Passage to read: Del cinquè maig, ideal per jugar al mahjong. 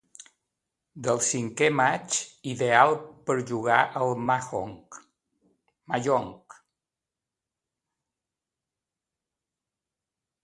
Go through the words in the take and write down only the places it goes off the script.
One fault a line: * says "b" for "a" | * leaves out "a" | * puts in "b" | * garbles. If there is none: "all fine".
all fine